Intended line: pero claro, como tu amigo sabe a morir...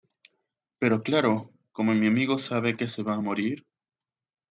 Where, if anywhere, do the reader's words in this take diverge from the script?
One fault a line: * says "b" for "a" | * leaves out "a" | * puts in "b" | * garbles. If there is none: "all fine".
* says "mi" for "tu"
* puts in "que se va"